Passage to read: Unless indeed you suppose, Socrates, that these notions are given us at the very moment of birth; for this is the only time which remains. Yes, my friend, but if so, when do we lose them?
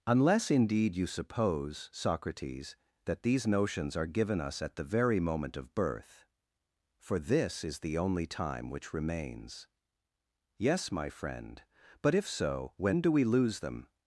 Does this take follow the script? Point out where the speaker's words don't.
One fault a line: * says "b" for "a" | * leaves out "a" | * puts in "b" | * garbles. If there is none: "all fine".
all fine